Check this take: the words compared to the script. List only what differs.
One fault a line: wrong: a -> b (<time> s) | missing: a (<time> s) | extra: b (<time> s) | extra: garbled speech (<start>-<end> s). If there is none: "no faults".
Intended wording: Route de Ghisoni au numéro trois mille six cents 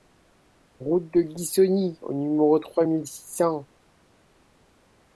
no faults